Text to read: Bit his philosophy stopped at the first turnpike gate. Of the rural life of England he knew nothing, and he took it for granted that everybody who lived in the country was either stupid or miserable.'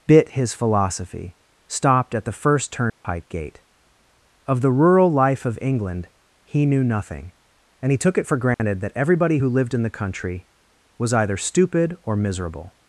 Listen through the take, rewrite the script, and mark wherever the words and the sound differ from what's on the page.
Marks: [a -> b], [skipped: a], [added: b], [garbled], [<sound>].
Bit his philosophy stopped at the first turnpike [dropout] gate. Of the rural life of England he knew nothing, and he took it for granted [dropout] that everybody who lived in the country was either stupid or miserable.'